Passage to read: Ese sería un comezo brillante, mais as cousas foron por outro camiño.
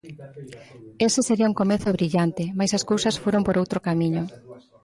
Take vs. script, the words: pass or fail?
pass